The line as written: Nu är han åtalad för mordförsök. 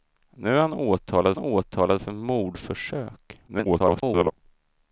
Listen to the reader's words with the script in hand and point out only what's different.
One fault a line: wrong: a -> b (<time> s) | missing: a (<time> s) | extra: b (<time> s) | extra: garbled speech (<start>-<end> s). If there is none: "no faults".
extra: åtalad (1.4 s)
extra: garbled speech (3.5-4.3 s)